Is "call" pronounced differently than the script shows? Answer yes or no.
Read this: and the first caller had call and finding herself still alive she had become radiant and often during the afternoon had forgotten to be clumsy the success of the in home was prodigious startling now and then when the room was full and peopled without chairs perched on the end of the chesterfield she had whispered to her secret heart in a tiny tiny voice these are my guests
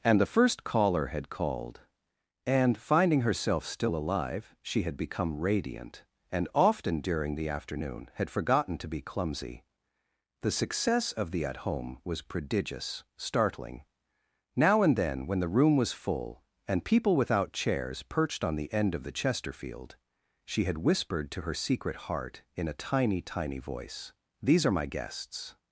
yes